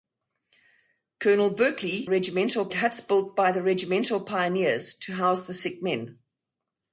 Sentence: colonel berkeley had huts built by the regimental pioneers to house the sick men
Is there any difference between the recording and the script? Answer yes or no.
yes